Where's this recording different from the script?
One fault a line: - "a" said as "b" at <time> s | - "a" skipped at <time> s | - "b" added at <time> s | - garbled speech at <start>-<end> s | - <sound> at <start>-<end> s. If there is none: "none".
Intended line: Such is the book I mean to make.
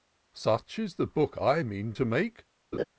- laugh at 2.7-2.8 s